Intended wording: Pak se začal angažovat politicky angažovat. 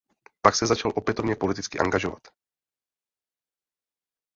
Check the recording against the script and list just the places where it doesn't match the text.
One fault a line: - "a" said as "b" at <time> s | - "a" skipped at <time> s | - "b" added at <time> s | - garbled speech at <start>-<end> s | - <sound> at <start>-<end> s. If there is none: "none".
- "angažovat" said as "opětovně" at 0.9 s